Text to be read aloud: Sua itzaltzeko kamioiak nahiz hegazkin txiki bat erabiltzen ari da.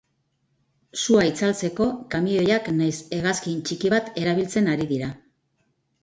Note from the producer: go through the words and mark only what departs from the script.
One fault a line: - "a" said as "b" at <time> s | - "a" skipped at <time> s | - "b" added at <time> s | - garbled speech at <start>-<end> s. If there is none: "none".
- "da" said as "dira" at 4.9 s